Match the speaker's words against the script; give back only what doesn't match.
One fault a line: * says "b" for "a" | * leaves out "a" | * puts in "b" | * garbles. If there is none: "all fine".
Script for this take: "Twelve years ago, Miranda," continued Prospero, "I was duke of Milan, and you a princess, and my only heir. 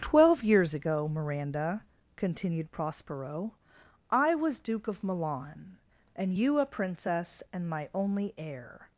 all fine